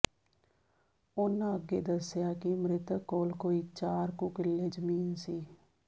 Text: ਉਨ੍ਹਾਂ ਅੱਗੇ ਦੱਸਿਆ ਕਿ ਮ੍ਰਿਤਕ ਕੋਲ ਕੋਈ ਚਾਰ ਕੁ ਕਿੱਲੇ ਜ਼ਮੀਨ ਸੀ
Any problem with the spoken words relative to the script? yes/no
no